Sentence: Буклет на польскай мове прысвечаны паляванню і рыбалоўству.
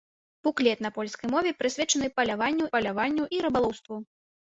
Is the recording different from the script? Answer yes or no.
yes